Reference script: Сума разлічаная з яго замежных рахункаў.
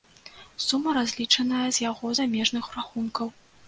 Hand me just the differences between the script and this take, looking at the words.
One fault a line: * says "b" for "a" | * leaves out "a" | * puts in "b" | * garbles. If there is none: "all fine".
all fine